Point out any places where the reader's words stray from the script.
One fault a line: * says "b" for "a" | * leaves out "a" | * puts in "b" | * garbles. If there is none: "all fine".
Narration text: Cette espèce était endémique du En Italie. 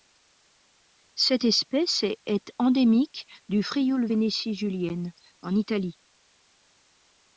* says "est" for "était"
* puts in "Frioul Vénétie julienne"